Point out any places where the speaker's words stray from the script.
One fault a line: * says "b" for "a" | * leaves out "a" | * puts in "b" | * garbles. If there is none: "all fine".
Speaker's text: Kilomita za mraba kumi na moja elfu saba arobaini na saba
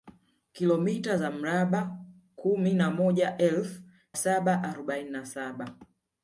all fine